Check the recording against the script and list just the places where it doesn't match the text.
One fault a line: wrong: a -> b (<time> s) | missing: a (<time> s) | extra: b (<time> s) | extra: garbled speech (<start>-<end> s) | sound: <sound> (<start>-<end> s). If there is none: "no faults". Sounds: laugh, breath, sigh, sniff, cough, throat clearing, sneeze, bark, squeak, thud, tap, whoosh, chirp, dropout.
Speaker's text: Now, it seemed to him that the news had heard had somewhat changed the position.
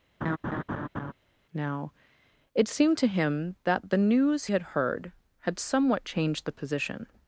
sound: laugh (0.2-1.1 s)